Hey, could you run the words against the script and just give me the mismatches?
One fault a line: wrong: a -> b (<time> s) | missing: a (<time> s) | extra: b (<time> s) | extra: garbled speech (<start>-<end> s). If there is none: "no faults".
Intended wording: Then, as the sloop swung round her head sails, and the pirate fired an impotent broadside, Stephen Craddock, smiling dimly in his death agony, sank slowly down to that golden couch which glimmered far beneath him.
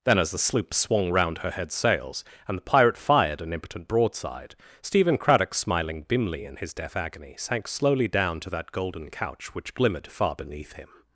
no faults